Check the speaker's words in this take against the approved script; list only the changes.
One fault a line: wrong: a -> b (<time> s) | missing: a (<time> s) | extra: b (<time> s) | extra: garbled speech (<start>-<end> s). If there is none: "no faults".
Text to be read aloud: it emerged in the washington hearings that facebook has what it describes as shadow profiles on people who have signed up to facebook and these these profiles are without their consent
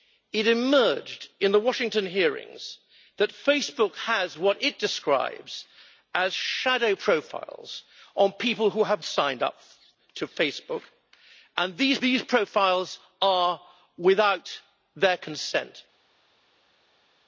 no faults